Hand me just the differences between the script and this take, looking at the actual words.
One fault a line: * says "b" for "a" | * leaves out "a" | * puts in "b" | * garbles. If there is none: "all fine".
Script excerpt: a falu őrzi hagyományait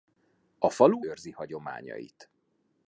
all fine